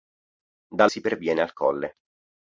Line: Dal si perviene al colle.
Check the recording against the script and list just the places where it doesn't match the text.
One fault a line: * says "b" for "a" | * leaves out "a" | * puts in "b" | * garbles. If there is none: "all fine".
all fine